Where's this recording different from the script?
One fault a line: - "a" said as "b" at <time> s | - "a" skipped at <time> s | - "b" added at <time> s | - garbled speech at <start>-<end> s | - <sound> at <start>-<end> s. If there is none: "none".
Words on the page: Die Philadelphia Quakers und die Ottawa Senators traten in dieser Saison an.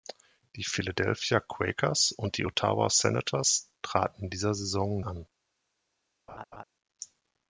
- laugh at 6.3-6.6 s